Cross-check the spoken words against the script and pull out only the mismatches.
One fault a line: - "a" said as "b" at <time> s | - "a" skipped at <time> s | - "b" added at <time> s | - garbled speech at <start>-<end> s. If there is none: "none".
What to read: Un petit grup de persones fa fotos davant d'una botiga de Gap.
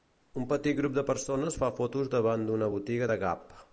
none